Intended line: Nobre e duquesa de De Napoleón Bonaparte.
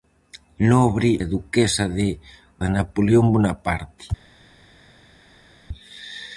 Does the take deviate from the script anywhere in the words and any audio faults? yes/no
no